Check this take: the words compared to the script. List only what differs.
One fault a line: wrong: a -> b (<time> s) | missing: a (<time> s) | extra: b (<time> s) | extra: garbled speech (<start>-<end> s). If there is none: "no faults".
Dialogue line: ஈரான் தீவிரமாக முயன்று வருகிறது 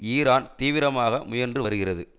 no faults